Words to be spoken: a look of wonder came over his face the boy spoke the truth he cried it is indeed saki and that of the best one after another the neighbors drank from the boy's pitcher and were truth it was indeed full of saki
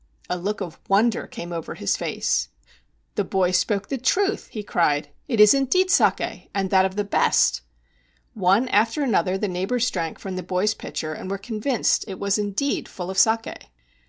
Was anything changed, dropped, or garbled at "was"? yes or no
no